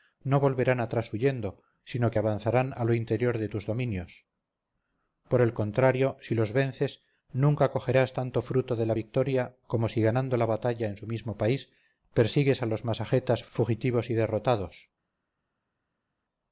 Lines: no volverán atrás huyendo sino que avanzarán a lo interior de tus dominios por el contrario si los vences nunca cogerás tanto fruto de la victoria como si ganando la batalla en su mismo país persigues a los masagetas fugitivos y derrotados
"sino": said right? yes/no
yes